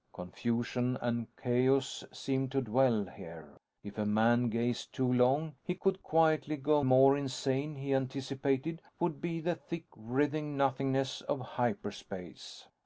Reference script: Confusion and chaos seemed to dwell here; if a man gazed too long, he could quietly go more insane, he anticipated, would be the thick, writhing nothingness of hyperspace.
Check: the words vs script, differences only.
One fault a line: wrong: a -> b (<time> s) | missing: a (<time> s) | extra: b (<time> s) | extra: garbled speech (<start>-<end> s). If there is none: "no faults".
no faults